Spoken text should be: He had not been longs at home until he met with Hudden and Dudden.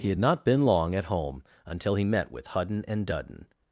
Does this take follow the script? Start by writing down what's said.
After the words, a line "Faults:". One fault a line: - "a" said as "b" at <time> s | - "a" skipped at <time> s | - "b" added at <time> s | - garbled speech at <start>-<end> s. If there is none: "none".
He had not been long at home until he met with Hudden and Dudden.
Faults:
- "longs" said as "long" at 0.6 s